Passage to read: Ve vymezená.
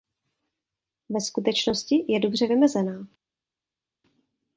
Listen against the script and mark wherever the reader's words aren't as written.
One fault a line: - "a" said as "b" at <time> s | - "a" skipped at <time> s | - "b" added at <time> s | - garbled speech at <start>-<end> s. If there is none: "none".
- "skutečnosti je dobře" added at 1.2 s